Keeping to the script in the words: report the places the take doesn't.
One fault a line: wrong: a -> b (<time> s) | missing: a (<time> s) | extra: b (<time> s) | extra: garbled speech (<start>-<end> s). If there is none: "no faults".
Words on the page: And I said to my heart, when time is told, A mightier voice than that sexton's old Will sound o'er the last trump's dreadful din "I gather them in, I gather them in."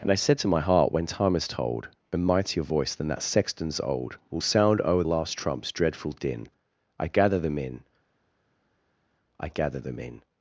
missing: the (5.0 s)